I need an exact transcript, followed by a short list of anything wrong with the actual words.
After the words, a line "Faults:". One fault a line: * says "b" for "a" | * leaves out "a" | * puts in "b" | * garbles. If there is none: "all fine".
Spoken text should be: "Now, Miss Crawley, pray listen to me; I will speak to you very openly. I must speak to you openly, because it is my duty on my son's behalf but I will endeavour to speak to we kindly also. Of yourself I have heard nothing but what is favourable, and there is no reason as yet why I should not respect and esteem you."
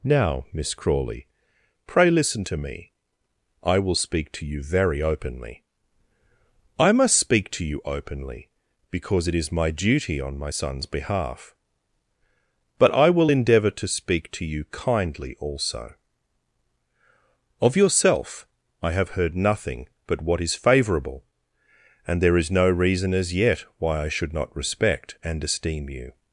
"Now, Miss Crawley, pray listen to me; I will speak to you very openly. I must speak to you openly, because it is my duty on my son's behalf but I will endeavour to speak to you kindly also. Of yourself I have heard nothing but what is favourable, and there is no reason as yet why I should not respect and esteem you."
Faults:
* says "you" for "we"